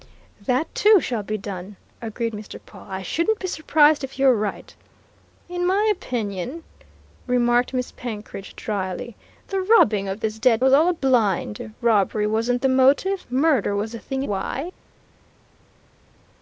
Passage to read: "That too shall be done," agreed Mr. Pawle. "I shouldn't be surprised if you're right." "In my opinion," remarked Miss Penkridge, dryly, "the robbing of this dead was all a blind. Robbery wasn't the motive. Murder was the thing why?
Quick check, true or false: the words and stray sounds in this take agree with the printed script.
true